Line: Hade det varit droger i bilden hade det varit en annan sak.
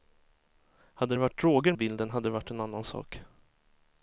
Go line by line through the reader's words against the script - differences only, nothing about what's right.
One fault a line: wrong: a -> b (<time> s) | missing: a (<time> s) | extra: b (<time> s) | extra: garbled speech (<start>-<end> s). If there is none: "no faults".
no faults